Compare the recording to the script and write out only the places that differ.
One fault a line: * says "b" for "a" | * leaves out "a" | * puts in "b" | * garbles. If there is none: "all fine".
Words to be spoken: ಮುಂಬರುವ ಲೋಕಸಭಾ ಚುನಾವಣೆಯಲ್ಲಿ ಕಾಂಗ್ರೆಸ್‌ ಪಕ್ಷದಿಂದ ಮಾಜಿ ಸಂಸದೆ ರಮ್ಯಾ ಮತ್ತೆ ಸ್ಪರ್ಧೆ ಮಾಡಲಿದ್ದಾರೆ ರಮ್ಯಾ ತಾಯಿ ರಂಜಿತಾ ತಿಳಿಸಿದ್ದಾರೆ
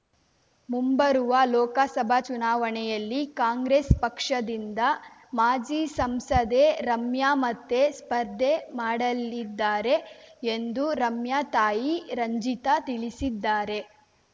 * puts in "ಎಂದು"